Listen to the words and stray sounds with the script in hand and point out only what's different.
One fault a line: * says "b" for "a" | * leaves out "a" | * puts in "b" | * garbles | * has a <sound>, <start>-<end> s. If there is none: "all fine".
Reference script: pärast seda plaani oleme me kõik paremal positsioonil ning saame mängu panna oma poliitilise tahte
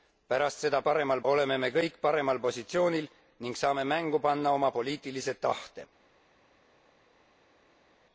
* says "paremal" for "plaani"